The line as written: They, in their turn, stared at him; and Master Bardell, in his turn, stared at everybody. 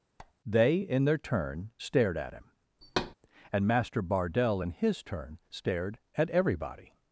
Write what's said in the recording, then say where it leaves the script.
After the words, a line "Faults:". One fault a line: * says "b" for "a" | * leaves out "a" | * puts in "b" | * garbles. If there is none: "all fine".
They, in their turn, stared at him; and Master Bardell, in his turn, stared at everybody.
Faults:
all fine